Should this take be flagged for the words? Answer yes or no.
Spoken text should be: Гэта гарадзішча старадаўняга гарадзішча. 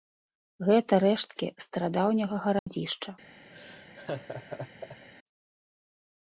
yes